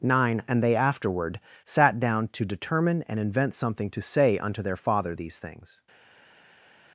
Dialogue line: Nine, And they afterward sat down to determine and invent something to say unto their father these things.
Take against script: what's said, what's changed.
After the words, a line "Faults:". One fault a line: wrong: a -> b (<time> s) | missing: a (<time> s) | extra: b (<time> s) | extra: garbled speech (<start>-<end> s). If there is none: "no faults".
Nine, And they afterward sat down to determine and invent something to say unto their father these things.
Faults:
no faults